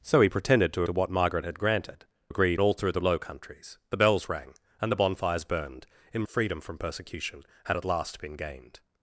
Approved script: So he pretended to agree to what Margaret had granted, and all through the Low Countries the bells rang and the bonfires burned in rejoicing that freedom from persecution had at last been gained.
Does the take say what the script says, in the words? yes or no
no